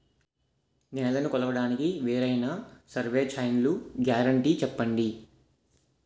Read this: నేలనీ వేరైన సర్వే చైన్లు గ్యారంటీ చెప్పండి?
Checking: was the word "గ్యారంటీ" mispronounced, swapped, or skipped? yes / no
no